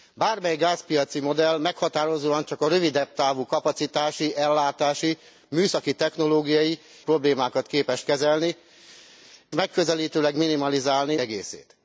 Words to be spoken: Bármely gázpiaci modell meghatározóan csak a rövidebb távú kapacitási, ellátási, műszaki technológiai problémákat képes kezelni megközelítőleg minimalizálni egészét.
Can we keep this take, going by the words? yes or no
yes